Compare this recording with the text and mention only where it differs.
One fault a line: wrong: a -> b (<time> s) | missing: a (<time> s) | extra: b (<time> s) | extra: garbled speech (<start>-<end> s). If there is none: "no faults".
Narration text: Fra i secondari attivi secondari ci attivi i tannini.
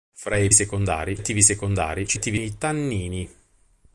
no faults